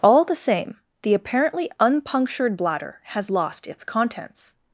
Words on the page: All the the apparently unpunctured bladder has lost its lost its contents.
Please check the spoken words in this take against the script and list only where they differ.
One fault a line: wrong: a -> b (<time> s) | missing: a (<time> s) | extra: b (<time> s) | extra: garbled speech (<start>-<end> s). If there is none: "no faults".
extra: same (0.3 s)
missing: lost its (3.8 s)